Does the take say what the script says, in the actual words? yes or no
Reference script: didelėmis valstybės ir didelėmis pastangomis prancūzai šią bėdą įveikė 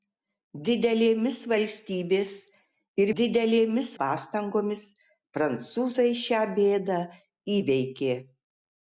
yes